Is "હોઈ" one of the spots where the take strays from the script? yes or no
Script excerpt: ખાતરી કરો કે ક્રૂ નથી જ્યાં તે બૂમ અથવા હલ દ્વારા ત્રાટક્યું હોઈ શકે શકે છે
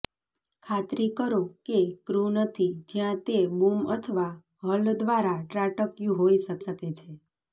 no